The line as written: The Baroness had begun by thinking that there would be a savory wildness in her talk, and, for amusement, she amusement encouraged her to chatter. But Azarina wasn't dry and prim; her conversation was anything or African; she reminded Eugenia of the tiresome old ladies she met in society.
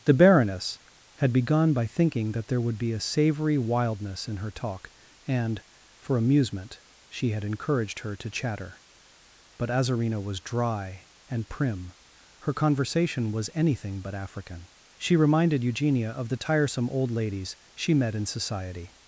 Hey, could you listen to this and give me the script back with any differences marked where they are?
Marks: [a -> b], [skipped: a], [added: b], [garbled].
The Baroness had begun by thinking that there would be a savory wildness in her talk, and, for amusement, she [amusement -> had] encouraged her to chatter. But Azarina [wasn't -> was] dry and prim; her conversation was anything [or -> but] African; she reminded Eugenia of the tiresome old ladies she met in society.